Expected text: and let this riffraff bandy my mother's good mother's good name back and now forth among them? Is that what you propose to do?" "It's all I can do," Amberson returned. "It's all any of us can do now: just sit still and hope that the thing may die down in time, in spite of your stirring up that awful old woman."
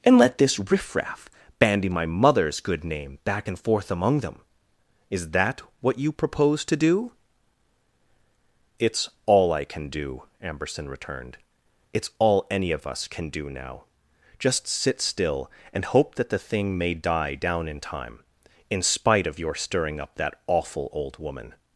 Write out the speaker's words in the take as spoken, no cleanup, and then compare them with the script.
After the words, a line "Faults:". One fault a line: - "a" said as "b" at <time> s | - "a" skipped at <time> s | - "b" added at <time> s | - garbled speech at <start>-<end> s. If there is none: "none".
and let this riffraff bandy my mother's good name back and forth among them? Is that what you propose to do?" "It's all I can do," Amberson returned. "It's all any of us can do now: just sit still and hope that the thing may die down in time, in spite of your stirring up that awful old woman."
Faults:
- "mother's good" skipped at 2.8 s
- "now" skipped at 3.6 s